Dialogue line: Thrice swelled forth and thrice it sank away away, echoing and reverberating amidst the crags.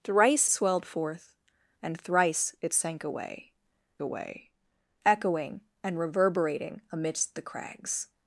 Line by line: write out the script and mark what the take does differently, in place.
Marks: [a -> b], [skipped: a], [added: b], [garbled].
Thrice swelled forth and thrice it sank away away, echoing and reverberating amidst the crags.